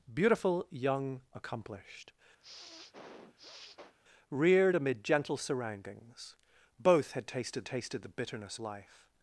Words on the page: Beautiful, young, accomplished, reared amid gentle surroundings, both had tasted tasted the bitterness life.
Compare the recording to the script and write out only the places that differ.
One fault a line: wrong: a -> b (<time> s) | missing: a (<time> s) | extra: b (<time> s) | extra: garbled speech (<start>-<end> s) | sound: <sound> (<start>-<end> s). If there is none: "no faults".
sound: sniff (2.4-3.9 s)